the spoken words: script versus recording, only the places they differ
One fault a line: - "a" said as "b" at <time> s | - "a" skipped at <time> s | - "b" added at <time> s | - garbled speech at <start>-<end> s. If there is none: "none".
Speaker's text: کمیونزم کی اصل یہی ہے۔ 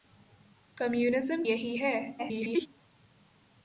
- "کی اصل" skipped at 1.4 s
- garbled speech at 2.2-2.7 s